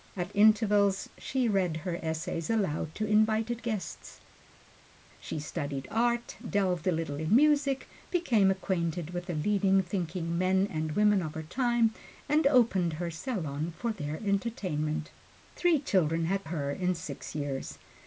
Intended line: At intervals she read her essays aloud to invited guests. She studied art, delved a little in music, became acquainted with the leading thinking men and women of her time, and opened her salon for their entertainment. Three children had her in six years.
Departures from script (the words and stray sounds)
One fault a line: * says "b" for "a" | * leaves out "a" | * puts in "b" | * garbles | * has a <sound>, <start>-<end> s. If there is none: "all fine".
all fine